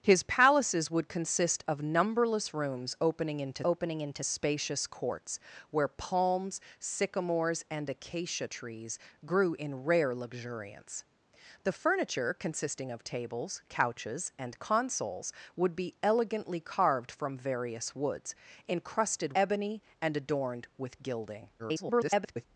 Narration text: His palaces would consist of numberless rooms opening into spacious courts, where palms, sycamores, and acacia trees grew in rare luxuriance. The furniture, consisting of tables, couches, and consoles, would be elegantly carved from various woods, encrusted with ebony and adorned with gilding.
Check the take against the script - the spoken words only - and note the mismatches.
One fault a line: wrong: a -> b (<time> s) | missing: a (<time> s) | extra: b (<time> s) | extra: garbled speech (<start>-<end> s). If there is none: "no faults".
extra: opening into (3.6 s)
missing: with (19.3 s)
extra: garbled speech (21.6-22.5 s)